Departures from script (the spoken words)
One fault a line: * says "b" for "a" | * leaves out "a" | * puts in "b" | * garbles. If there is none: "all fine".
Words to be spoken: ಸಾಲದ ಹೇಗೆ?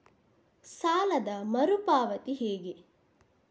* puts in "ಮರು ಪಾವತಿ"